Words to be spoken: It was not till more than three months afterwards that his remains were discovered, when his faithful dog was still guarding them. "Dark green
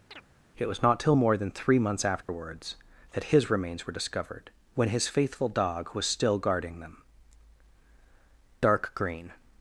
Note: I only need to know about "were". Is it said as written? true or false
true